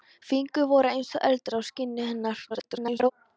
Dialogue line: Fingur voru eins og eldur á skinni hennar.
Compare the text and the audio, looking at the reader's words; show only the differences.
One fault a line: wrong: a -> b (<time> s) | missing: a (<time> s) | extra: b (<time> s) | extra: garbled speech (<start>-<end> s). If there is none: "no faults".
extra: garbled speech (2.5-3.1 s)